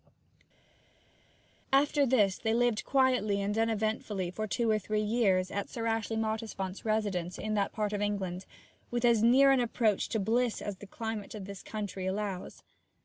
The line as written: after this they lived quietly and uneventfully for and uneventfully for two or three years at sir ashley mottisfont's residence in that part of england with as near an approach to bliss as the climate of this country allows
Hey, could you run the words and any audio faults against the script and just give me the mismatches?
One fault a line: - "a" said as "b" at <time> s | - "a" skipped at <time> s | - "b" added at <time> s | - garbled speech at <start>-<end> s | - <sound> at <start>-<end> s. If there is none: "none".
- "and uneventfully for" skipped at 4.5 s